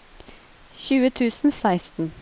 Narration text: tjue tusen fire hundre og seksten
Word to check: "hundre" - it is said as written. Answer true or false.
false